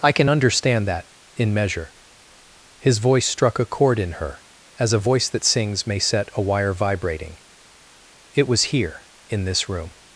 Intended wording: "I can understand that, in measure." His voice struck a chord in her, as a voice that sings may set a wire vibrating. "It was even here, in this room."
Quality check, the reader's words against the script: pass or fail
fail